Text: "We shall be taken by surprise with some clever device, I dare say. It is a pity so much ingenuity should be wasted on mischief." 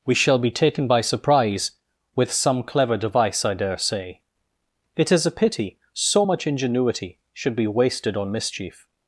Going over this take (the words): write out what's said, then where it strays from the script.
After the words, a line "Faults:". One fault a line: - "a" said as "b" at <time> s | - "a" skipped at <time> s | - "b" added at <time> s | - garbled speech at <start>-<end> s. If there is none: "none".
"We shall be taken by surprise with some clever device, I dare say. It is a pity so much ingenuity should be wasted on mischief."
Faults:
none